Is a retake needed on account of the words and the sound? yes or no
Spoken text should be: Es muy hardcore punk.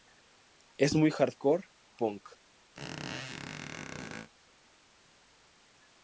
yes